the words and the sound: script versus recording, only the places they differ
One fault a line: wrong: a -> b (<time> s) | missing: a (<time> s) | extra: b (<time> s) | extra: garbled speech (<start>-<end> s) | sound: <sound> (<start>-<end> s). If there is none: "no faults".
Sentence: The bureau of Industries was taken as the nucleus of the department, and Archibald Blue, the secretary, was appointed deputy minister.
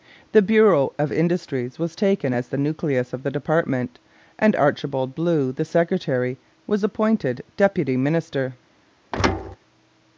sound: thud (9.1-9.6 s)